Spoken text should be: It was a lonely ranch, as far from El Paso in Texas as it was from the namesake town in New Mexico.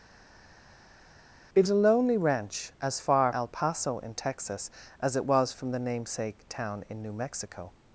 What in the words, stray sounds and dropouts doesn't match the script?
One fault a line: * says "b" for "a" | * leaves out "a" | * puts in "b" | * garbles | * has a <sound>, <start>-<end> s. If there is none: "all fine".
* leaves out "was"
* leaves out "from"